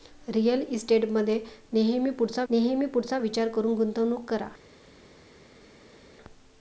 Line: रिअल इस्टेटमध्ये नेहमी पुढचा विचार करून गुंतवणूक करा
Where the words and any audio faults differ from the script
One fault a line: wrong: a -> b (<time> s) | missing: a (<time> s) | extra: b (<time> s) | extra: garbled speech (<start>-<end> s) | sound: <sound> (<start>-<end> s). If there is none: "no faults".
extra: नेहमी पुढचा (2.5 s)